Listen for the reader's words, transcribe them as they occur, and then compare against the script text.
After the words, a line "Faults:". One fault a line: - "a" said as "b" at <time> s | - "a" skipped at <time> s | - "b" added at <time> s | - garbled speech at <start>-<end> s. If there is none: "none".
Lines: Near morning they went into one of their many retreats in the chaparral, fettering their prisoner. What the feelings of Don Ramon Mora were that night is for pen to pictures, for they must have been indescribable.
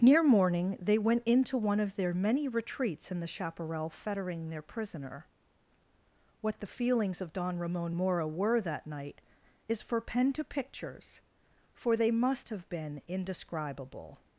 Near morning they went into one of their many retreats in the chaparral, fettering their prisoner. What the feelings of Don Ramon Mora were that night is for pen to pictures, for they must have been indescribable.
Faults:
none